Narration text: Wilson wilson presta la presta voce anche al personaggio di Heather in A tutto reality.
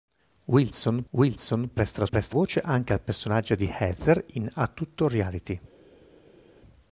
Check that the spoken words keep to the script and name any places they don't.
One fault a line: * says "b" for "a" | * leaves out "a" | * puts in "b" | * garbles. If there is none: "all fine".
all fine